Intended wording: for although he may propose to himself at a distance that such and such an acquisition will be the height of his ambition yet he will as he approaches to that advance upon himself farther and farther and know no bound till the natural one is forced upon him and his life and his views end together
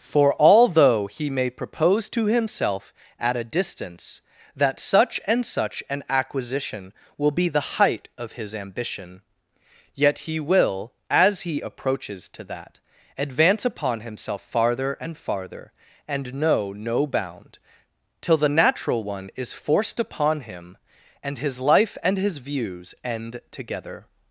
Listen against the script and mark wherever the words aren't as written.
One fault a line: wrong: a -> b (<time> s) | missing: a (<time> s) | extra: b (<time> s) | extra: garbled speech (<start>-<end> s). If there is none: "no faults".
no faults